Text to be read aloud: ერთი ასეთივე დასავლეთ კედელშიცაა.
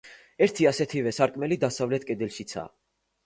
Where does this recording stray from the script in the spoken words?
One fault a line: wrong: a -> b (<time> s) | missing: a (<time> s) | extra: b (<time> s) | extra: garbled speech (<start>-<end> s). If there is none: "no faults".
extra: სარკმელი (1.2 s)